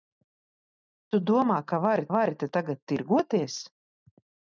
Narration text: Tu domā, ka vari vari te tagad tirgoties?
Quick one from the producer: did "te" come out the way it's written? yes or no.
yes